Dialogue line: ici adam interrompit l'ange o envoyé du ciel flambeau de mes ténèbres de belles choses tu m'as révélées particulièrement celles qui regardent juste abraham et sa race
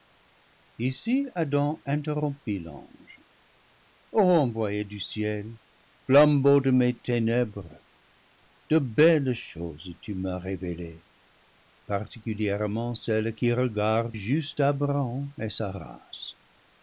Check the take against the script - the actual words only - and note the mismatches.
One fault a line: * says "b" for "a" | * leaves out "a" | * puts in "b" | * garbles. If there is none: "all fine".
all fine